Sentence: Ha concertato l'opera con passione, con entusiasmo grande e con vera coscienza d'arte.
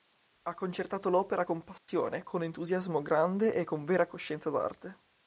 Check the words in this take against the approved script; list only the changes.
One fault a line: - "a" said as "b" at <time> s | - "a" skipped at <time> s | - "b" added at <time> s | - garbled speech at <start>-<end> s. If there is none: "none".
none